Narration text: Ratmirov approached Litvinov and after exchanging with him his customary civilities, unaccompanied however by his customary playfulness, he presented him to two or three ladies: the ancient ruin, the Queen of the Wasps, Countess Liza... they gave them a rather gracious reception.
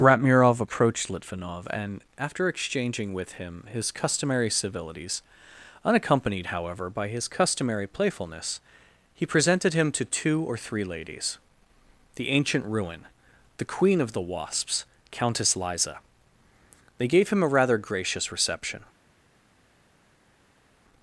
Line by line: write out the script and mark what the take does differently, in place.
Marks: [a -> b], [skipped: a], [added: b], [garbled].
Ratmirov approached Litvinov and after exchanging with him his customary civilities, unaccompanied however by his customary playfulness, he presented him to two or three ladies: the ancient ruin, the Queen of the Wasps, Countess Liza... they gave [them -> him] a rather gracious reception.